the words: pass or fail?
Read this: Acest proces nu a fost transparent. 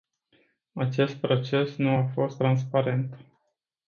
pass